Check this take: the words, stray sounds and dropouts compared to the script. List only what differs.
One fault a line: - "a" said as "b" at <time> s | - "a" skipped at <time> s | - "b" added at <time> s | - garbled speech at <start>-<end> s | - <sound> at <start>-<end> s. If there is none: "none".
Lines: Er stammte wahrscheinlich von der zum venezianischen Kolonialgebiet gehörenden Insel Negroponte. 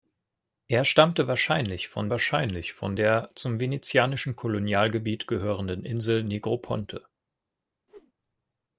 - "wahrscheinlich von" added at 2.1 s
- whoosh at 7.9-8.1 s